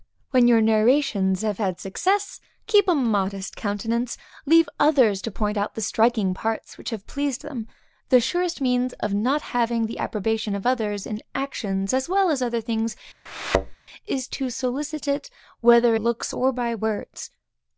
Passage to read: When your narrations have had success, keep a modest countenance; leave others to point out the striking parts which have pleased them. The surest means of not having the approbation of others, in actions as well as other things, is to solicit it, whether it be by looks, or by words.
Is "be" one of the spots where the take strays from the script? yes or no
yes